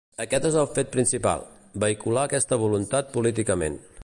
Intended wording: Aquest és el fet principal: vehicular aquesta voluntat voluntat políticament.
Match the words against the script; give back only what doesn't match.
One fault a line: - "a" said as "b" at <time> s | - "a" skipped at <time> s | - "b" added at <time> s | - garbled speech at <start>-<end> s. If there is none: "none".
- "voluntat" skipped at 3.2 s